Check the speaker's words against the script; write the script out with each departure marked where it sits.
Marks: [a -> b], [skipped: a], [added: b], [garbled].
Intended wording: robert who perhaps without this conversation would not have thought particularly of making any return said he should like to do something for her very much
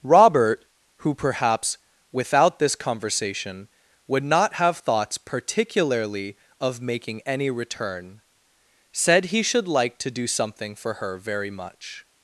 robert who perhaps without this conversation would not have [thought -> thoughts] particularly of making any return said he should like to do something for her very much